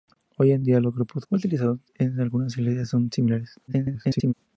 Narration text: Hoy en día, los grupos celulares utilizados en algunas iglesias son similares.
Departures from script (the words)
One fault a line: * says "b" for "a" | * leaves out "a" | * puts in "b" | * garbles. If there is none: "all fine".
* leaves out "celulares"
* garbles